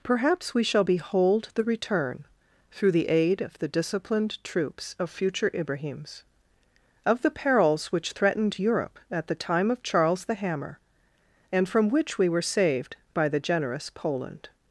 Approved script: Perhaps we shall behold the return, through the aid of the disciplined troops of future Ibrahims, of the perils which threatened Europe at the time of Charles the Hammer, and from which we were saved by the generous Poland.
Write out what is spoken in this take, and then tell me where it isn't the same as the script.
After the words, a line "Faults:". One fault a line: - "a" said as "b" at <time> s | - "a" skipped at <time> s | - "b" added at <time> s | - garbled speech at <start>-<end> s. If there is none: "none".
Perhaps we shall behold the return, through the aid of the disciplined troops of future Ibrahims, of the perils which threatened Europe at the time of Charles the Hammer, and from which we were saved by the generous Poland.
Faults:
none